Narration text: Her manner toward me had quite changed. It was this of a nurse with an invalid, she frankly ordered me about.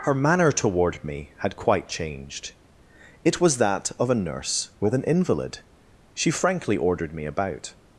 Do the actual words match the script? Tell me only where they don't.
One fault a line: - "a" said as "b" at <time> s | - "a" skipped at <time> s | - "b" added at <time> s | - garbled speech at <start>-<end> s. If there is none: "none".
- "this" said as "that" at 3.6 s